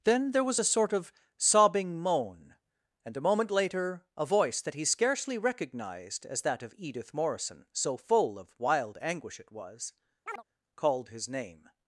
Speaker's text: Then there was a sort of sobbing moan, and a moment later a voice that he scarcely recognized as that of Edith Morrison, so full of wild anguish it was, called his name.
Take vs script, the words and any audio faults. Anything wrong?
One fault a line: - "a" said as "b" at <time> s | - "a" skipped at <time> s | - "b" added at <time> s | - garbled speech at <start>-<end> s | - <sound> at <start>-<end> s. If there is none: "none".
- chirp at 10.3-10.4 s